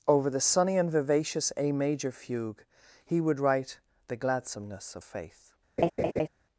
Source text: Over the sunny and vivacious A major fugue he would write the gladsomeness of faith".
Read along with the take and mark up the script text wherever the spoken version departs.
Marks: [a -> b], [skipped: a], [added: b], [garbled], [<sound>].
Over the sunny and vivacious A major fugue he would write the gladsomeness of faith". [laugh]